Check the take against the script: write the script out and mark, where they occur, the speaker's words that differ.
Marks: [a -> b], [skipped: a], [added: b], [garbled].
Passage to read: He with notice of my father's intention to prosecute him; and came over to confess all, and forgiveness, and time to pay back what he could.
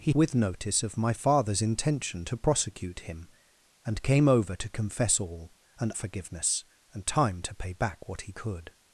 He with notice of my father's intention to prosecute him; and came over to confess all, and forgiveness, and time to pay back what he could.